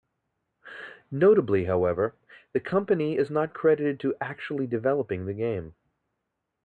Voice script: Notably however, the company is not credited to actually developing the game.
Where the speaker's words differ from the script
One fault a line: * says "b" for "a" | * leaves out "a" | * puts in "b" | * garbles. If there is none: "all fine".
all fine